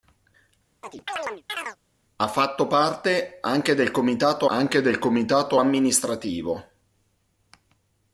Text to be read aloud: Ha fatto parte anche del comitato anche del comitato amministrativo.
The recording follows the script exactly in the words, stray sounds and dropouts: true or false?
false